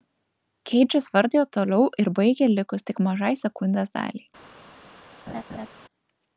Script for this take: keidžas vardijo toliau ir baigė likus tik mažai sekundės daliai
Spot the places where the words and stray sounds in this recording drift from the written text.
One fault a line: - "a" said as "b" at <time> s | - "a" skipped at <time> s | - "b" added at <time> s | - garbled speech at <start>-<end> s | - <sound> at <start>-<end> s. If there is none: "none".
- laugh at 5.3-5.7 s